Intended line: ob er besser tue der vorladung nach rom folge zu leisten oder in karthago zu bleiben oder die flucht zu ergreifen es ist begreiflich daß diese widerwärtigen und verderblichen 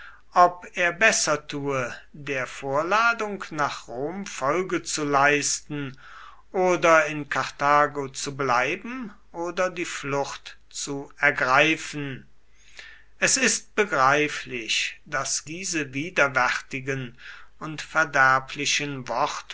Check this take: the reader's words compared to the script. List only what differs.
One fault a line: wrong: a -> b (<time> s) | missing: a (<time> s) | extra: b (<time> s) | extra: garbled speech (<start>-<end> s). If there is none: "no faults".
no faults